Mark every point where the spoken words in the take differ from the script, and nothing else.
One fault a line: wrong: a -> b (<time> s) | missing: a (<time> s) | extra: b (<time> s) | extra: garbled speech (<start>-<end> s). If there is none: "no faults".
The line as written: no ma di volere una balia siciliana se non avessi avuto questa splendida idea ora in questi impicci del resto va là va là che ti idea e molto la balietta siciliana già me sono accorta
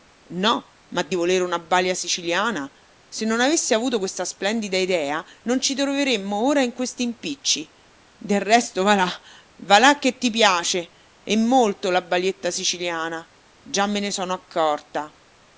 extra: non ci troveremmo (5.4 s)
wrong: idea -> piace (10.3 s)
extra: ne (14.0 s)